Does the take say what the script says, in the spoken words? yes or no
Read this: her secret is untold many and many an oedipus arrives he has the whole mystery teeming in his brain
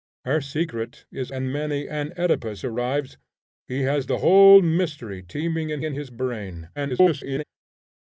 no